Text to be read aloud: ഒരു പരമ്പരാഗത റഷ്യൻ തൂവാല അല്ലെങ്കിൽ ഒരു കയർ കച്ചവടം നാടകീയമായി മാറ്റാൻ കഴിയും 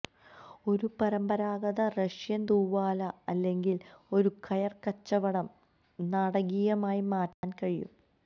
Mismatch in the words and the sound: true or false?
true